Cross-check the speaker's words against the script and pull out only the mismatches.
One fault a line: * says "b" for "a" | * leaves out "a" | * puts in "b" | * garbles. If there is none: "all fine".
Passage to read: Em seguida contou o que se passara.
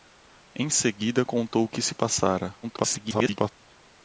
* garbles